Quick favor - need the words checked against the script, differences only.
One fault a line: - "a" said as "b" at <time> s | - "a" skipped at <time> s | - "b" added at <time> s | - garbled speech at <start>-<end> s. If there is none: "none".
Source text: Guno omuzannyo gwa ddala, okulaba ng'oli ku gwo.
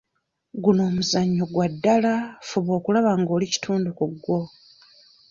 - "fuba" added at 2.5 s
- "kitundu" added at 3.5 s